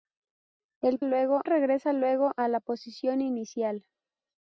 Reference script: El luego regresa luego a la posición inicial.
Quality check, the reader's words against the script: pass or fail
pass